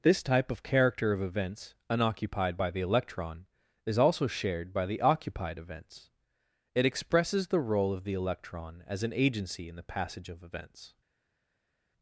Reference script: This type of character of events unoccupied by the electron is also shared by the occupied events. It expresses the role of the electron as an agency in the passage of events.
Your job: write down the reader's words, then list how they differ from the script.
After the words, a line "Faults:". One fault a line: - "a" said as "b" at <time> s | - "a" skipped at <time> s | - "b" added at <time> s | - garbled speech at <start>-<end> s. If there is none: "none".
This type of character of events unoccupied by the electron is also shared by the occupied events. It expresses the role of the electron as an agency in the passage of events.
Faults:
none